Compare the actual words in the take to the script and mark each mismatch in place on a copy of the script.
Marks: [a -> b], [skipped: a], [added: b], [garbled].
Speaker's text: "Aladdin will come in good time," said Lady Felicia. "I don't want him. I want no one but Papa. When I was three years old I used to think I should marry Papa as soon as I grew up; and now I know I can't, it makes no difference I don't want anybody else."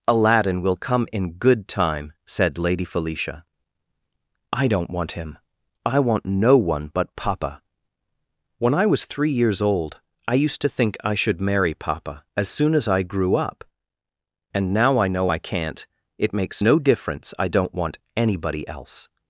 "Aladdin will come in good time," said Lady Felicia. "I don't want him. I want no one but Papa. When I was three years old I used to think I should marry Papa as soon as I grew up; and now I know I can't, it makes no difference I don't want anybody else."